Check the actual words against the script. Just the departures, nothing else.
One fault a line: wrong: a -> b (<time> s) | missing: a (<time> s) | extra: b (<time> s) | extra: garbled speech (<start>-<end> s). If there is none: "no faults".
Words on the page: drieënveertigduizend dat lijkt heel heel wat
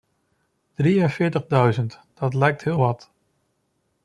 missing: heel (2.8 s)